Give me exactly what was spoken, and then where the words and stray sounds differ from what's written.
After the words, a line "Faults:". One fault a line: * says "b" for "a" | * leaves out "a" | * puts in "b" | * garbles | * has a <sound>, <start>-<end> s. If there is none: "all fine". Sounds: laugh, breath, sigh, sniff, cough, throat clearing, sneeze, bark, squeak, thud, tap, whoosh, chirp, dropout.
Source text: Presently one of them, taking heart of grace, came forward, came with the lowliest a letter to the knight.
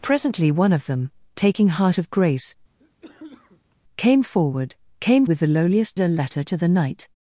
Presently one of them, taking heart of grace, came forward, came with the lowliest a letter to the knight.
Faults:
* has a cough, 2.8-3.8 s